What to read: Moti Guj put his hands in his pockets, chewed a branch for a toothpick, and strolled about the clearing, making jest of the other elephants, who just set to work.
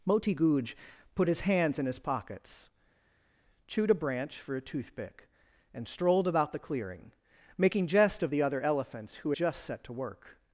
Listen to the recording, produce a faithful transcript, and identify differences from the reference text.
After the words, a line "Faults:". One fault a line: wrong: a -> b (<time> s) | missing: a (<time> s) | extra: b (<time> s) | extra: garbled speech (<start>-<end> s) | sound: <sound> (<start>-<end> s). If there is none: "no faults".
Moti Guj put his hands in his pockets, chewed a branch for a toothpick, and strolled about the clearing, making jest of the other elephants, who just set to work.
Faults:
no faults